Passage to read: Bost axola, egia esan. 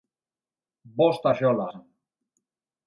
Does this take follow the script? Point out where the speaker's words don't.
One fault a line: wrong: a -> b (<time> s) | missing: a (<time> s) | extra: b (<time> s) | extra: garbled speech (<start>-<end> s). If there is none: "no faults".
missing: egia (1.7 s)